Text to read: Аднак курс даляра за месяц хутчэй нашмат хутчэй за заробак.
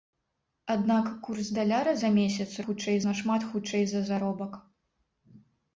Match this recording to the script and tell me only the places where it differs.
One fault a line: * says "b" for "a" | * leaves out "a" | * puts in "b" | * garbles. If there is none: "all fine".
all fine